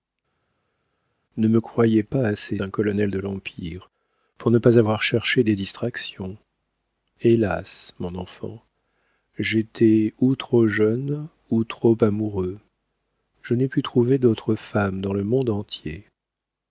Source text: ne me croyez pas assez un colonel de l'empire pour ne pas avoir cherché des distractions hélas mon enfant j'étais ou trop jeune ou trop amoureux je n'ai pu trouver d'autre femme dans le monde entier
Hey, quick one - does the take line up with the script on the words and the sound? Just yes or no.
yes